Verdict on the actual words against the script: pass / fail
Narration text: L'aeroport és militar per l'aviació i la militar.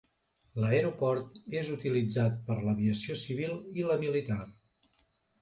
fail